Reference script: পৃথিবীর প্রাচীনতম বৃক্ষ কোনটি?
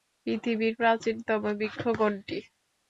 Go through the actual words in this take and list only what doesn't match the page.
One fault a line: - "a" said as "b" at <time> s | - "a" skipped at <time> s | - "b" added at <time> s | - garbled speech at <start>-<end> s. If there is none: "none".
none